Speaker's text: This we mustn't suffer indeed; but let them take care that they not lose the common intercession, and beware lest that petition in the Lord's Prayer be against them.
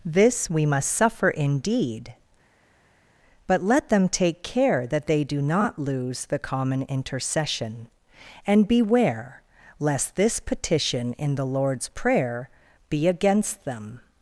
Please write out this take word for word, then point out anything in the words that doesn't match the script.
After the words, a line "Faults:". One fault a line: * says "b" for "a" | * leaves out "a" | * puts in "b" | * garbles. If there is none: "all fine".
This we must suffer indeed; but let them take care that they do not lose the common intercession, and beware lest this petition in the Lord's Prayer be against them.
Faults:
* says "must" for "mustn't"
* puts in "do"
* says "this" for "that"